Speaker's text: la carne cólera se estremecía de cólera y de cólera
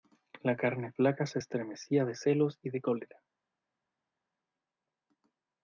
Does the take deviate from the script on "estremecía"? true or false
false